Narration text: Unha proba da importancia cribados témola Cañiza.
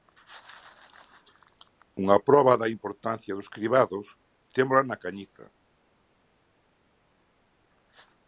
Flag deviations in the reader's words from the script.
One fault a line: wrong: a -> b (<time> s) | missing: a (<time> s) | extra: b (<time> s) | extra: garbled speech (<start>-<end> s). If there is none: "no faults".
extra: dos (3.4 s)
extra: na (4.9 s)